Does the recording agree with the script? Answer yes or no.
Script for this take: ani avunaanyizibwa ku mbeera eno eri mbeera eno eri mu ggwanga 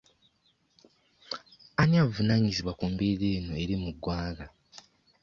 no